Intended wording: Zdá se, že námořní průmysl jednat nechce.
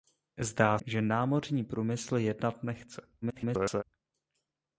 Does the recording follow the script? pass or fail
fail